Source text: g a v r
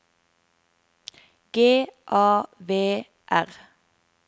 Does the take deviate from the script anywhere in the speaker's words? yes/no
no